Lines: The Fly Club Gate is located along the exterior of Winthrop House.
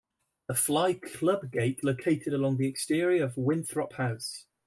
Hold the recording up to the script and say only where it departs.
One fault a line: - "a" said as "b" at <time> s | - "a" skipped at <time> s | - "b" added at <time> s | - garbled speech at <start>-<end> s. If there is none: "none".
- "is" skipped at 1.8 s